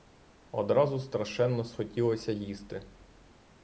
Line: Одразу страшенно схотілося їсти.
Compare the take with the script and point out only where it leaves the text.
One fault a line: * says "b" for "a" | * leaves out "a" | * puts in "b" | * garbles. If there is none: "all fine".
all fine